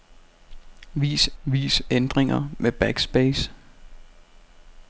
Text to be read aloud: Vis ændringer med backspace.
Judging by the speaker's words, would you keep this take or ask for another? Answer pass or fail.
fail